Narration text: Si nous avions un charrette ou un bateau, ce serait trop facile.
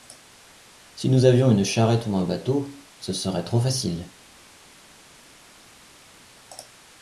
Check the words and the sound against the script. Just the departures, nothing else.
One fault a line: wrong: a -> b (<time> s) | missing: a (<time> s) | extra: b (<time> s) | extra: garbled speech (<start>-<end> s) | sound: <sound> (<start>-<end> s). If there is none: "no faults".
wrong: un -> une (1.5 s)